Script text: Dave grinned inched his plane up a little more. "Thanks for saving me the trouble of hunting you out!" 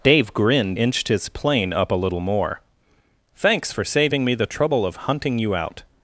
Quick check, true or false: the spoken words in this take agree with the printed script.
true